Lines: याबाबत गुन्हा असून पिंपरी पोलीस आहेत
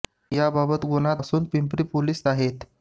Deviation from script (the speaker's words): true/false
false